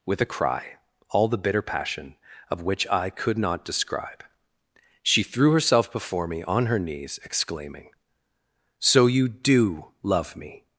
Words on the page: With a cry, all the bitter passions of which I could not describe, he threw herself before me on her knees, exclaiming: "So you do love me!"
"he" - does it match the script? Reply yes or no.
no